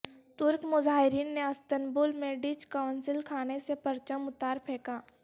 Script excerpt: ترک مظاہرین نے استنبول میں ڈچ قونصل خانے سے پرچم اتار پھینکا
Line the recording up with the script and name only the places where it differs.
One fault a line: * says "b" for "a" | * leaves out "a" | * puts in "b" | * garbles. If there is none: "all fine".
all fine